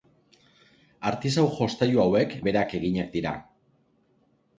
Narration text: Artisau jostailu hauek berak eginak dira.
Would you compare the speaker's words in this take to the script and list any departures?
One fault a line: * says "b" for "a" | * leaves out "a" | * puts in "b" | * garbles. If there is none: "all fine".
all fine